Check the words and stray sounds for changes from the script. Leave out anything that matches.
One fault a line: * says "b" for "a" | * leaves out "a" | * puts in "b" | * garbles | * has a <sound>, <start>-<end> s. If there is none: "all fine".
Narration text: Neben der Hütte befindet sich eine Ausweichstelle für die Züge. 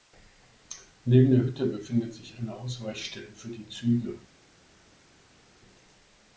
all fine